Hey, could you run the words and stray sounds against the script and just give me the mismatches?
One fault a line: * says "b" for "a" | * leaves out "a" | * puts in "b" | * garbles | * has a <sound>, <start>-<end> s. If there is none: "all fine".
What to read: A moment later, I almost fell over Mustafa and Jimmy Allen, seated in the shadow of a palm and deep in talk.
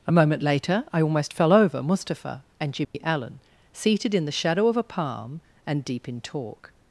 * has a dropout, 2.8-2.9 s